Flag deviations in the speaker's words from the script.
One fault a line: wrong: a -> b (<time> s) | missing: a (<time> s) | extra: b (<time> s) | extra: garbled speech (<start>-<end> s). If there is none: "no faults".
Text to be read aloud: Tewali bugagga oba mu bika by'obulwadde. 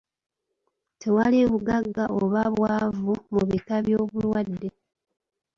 extra: bwavu (2.5 s)